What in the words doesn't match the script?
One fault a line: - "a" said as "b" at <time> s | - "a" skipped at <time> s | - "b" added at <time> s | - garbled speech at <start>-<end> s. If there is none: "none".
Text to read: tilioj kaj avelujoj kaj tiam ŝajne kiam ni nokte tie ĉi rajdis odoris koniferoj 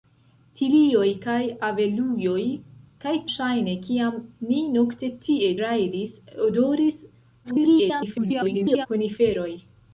- "tiam" skipped at 3.1 s
- "ĉi" skipped at 5.5 s
- garbled speech at 7.4-8.9 s